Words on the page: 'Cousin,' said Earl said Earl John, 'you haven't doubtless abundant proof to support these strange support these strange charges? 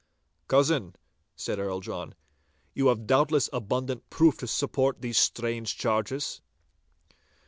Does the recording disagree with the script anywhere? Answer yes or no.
yes